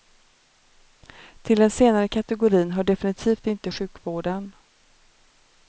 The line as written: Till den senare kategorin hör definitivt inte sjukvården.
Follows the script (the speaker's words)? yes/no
yes